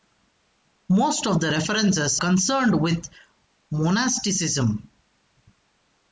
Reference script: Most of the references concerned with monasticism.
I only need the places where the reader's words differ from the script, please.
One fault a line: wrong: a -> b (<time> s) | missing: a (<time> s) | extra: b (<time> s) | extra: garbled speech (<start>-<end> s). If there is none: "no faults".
no faults